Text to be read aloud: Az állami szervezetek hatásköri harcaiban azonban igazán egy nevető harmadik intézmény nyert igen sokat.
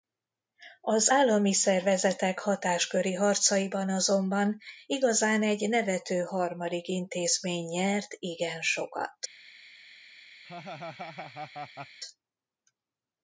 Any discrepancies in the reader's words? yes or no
no